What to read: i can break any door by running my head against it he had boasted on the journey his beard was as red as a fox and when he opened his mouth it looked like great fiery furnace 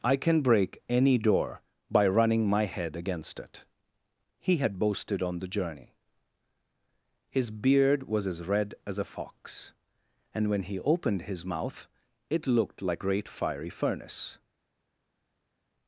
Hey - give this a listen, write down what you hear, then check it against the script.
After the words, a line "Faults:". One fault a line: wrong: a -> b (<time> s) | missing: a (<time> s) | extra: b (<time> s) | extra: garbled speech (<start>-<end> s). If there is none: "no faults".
i can break any door by running my head against it he had boasted on the journey his beard was as red as a fox and when he opened his mouth it looked like great fiery furnace
Faults:
no faults